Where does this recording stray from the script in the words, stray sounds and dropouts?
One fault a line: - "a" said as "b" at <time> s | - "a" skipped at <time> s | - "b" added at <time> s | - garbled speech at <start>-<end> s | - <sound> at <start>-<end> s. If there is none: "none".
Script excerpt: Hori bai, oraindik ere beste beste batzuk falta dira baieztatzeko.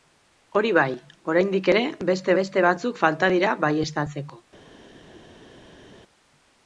none